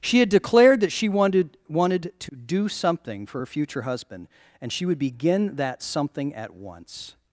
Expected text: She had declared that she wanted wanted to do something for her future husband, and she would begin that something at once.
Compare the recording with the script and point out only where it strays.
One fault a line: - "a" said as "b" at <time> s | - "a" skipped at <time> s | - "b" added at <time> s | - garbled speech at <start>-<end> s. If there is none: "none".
none